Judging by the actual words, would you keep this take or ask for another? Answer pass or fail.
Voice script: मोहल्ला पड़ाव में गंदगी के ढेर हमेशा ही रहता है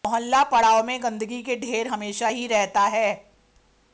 pass